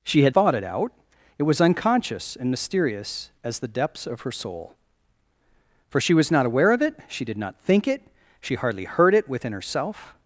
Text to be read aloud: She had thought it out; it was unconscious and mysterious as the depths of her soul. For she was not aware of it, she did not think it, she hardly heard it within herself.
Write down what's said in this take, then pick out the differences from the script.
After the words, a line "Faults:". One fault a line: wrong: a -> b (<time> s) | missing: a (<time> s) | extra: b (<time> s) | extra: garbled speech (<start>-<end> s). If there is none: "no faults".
She had thought it out; it was unconscious and mysterious as the depths of her soul. For she was not aware of it, she did not think it, she hardly heard it within herself.
Faults:
no faults